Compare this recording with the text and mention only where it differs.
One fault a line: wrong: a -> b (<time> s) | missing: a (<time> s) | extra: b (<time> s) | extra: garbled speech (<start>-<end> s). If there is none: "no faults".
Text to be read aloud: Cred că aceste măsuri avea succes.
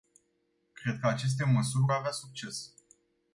no faults